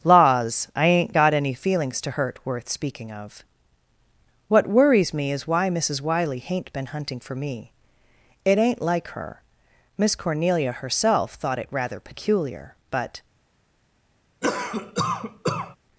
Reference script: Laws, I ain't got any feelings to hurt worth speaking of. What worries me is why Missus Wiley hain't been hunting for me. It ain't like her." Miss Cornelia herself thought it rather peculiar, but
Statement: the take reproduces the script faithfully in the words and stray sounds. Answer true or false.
false